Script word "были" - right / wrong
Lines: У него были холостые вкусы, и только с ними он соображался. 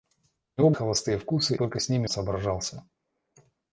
wrong